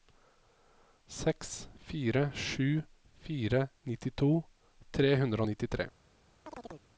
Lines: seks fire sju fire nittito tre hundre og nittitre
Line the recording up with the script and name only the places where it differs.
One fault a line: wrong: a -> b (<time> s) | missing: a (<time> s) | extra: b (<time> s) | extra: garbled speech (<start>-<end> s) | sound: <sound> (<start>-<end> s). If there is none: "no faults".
sound: chirp (6.5-6.9 s)